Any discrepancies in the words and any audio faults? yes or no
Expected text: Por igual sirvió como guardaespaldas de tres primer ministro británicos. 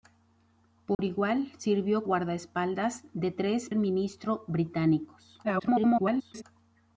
yes